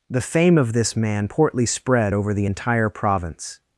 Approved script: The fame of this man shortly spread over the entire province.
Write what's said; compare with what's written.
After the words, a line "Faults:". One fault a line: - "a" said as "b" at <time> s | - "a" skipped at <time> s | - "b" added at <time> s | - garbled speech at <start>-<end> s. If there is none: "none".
The fame of this man portly spread over the entire province.
Faults:
- "shortly" said as "portly" at 1.3 s